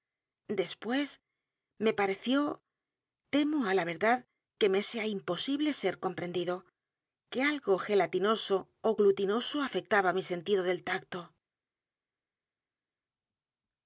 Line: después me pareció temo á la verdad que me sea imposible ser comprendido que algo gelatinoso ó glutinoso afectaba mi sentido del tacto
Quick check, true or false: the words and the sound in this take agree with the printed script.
true